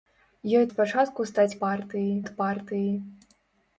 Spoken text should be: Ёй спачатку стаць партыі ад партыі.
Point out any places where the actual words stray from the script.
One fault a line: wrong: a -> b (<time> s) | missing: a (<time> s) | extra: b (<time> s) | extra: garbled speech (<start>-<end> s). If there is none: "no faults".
no faults